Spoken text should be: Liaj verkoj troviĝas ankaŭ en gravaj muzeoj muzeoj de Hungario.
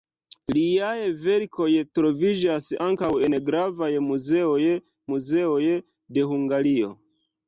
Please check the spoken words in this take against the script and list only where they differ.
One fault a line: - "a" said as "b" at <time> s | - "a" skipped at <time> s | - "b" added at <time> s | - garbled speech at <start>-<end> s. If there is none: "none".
none